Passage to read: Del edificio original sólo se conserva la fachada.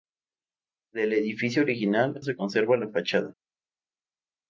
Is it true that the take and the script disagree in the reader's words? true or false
true